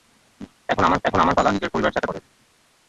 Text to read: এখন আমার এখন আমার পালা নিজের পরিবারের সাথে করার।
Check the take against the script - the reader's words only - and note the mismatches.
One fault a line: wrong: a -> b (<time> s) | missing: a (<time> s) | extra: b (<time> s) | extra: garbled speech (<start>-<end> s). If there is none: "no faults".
no faults